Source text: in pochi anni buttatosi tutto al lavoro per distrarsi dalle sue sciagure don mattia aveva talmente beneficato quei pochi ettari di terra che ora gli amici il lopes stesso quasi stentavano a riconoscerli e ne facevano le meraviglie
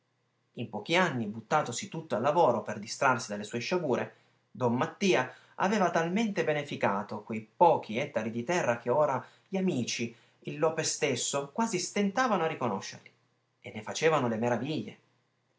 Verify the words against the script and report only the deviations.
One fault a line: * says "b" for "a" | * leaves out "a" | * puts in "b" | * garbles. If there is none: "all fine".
all fine